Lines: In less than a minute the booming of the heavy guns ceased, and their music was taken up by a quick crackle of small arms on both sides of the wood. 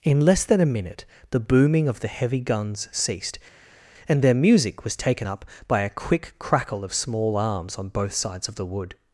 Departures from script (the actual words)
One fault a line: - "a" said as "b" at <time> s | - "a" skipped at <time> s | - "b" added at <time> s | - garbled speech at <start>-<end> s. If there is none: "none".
none